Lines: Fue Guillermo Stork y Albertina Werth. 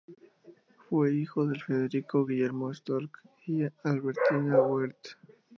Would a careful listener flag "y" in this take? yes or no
no